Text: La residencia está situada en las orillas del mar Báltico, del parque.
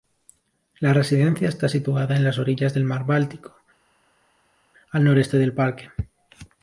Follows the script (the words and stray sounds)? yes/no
no